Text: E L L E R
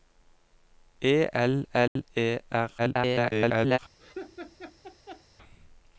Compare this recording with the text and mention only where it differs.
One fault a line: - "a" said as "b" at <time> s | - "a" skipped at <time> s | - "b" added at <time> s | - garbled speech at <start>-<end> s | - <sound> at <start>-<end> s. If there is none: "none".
- dropout at 1.9-2.0 s
- garbled speech at 2.8-3.8 s
- laugh at 4.0-5.2 s